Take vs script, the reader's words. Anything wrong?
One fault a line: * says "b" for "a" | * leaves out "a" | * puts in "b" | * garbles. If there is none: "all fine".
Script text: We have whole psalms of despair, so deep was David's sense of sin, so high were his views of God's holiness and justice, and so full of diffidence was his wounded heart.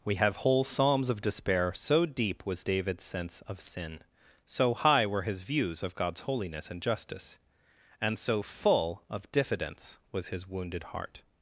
all fine